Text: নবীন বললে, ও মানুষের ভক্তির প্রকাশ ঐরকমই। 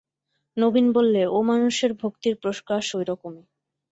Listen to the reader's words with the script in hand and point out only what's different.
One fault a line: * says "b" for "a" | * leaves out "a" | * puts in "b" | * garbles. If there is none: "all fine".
all fine